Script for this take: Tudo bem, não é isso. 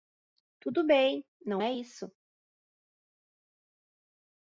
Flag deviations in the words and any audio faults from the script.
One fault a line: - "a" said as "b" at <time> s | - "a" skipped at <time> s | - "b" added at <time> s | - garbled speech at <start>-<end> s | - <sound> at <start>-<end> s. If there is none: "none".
none